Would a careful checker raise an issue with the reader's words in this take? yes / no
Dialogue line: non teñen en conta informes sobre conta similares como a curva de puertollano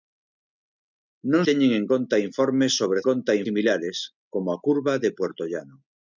no